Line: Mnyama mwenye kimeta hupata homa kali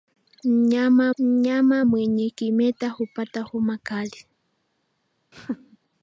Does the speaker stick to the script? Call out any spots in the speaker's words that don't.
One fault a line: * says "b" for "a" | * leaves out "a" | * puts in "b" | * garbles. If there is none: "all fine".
* puts in "mnyama"